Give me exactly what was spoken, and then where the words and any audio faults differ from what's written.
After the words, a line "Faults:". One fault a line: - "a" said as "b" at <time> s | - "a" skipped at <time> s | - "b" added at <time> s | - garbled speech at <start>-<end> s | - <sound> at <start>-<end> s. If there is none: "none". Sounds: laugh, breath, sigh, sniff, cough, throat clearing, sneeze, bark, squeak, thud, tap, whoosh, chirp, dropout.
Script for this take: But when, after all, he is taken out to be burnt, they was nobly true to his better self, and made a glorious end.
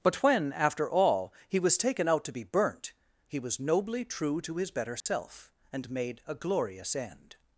But when, after all, he was taken out to be burnt, he was nobly true to his better self, and made a glorious end.
Faults:
- "is" said as "was" at 1.6 s
- "they" said as "he" at 3.3 s
- dropout at 5.0-5.1 s